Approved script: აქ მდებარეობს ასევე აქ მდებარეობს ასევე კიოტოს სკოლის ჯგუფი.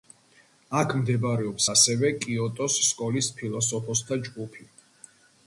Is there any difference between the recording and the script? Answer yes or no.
yes